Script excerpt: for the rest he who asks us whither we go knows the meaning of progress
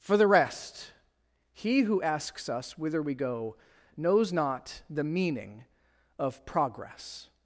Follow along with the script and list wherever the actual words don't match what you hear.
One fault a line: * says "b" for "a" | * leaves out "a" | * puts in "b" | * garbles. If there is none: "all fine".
* puts in "not"